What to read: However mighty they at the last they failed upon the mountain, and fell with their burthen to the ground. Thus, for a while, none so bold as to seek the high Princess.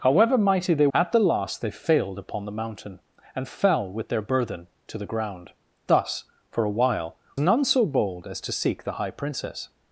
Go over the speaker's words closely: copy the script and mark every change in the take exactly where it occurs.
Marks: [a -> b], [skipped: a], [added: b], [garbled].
However mighty they at the last they failed upon the mountain, and fell with their burthen to the ground. Thus, for a while, none so bold as to seek the high Princess.